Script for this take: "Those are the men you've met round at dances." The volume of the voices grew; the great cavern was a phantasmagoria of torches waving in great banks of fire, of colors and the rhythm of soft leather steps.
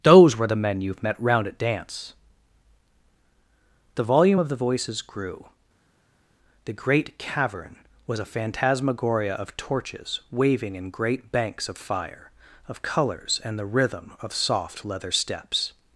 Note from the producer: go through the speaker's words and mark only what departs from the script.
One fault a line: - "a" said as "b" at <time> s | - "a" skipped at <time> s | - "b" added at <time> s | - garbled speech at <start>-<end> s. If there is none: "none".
- "are" said as "were" at 0.3 s
- "dances" said as "dance" at 1.6 s